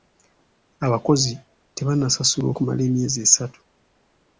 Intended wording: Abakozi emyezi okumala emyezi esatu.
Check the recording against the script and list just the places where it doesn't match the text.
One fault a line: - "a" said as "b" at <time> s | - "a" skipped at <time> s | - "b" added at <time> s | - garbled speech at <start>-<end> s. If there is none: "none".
- "emyezi" said as "tebannasasulwa" at 1.8 s